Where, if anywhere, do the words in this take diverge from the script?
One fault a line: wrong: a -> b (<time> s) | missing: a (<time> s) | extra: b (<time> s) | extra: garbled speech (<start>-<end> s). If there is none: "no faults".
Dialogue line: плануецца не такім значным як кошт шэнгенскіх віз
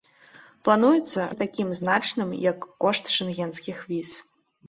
no faults